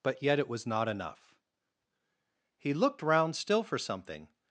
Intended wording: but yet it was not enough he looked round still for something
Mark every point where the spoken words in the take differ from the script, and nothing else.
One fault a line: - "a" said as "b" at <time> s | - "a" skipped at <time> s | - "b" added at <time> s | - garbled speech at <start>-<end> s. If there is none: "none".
none